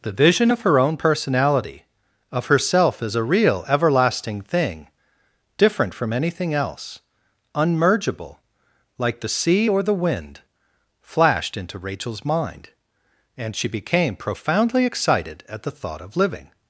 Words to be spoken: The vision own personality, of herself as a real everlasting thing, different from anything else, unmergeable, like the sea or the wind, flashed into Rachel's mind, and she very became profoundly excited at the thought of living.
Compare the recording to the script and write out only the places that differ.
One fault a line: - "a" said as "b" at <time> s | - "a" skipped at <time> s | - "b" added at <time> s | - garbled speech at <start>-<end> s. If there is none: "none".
- "of her" added at 0.5 s
- "very" skipped at 13.7 s